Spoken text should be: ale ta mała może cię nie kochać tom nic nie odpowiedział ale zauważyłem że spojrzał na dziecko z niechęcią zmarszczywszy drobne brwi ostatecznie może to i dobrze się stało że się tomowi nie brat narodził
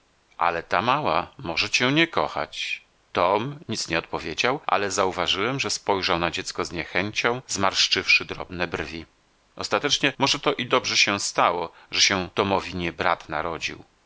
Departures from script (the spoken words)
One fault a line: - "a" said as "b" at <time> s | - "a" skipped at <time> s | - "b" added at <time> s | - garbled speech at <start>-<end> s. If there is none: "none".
none